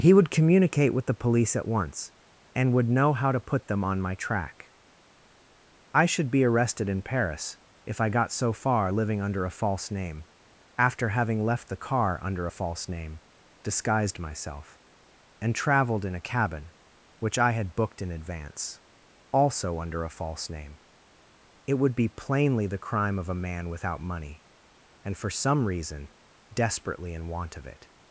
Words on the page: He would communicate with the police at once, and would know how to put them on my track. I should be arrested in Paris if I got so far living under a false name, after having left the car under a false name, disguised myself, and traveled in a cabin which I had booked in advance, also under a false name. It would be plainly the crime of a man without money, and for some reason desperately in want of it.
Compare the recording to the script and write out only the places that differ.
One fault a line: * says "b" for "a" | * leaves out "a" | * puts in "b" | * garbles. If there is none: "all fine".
all fine